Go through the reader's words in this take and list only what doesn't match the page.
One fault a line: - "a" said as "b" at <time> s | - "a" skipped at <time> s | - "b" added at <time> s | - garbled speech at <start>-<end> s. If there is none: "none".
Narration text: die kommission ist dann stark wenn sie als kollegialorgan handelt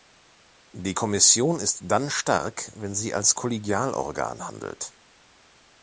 none